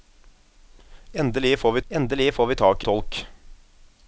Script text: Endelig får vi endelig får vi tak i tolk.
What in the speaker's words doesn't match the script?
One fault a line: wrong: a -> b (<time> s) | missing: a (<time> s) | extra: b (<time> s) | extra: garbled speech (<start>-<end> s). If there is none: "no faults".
no faults